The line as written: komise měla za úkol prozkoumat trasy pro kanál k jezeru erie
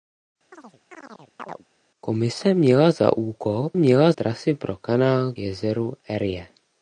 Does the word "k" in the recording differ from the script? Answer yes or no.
yes